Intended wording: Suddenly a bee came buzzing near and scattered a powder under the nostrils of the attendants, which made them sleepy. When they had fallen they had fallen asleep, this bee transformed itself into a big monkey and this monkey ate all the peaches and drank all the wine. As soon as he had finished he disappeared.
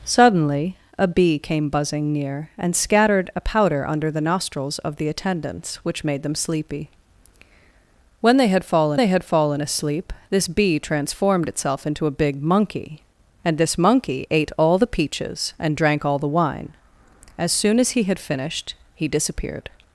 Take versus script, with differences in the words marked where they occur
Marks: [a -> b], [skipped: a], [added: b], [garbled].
Suddenly a bee came buzzing near and scattered a powder under the nostrils of the attendants, which made them sleepy. When they had fallen they had fallen asleep, this bee transformed itself into a big monkey and this monkey ate all the peaches and drank all the wine. As soon as he had finished he disappeared.